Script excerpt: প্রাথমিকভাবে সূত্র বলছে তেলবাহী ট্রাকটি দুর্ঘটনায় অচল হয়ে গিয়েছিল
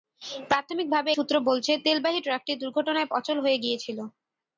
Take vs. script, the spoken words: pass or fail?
pass